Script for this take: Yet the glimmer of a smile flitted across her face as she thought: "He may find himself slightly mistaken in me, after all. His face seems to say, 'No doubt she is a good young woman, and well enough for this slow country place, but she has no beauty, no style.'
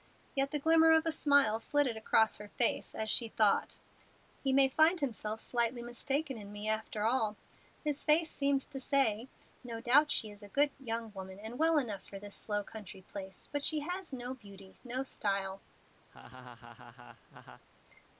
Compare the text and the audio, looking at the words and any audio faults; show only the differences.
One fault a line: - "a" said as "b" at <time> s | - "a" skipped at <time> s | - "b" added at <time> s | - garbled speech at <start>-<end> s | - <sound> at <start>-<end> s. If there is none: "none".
- laugh at 16.1-17.6 s